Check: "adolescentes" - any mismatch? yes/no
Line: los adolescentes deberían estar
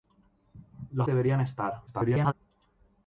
yes